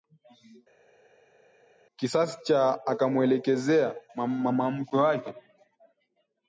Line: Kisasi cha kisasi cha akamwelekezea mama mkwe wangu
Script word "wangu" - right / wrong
wrong